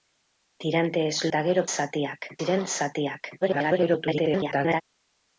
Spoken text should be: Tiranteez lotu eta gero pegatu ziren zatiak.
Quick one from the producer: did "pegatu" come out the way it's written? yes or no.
no